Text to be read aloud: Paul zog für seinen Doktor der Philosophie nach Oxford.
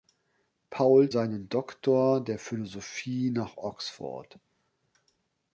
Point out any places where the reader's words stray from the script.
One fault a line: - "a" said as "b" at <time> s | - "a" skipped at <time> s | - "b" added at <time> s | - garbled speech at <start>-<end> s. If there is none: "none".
- "zog für" skipped at 1.1 s